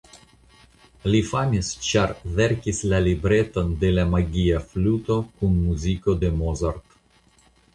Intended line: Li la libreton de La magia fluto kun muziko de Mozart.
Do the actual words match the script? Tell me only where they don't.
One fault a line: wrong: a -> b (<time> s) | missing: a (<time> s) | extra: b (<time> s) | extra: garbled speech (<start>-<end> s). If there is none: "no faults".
extra: famis ĉar verkis (1.3 s)